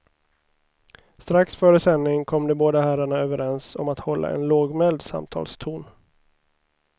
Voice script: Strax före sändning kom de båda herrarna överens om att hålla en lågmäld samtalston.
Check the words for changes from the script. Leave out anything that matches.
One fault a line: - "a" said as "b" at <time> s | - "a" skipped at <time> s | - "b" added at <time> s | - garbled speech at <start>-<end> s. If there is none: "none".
none